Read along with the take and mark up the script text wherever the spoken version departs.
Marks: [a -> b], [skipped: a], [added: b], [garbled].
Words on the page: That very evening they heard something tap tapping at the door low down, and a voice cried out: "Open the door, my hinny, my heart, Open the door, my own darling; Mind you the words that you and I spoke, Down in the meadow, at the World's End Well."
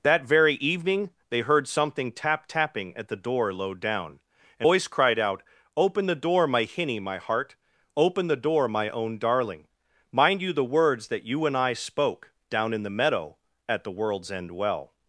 That very evening they heard something tap tapping at the door low down, and [skipped: a] voice cried out: "Open the door, my hinny, my heart, Open the door, my own darling; Mind you the words that you and I spoke, Down in the meadow, at the World's End Well."